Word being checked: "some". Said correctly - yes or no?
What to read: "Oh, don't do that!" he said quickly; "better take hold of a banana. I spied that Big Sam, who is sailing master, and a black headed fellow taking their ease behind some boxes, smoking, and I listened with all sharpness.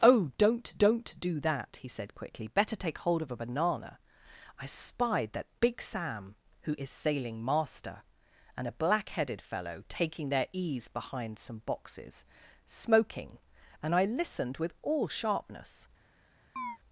yes